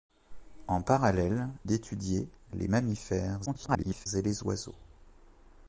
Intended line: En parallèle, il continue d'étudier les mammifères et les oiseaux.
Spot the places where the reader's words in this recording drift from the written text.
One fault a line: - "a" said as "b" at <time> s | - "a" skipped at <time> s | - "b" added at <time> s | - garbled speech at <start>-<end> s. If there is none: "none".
- "il continue" skipped at 1.5 s
- garbled speech at 3.5-4.1 s